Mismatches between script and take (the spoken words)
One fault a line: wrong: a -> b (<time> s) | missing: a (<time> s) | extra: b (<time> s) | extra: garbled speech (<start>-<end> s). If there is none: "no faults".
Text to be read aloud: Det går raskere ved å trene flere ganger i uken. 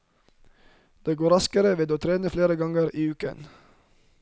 no faults